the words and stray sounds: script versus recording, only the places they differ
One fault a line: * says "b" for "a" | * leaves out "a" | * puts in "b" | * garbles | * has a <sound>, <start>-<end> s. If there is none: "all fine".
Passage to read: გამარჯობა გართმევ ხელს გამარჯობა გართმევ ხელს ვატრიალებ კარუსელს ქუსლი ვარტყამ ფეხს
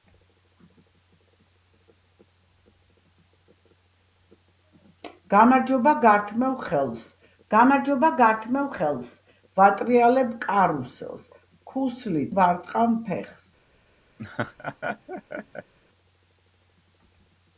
* has a laugh, 14.2-15.7 s